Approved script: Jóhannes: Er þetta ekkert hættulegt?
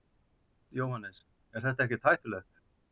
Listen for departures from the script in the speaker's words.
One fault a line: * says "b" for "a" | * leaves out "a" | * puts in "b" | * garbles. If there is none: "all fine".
all fine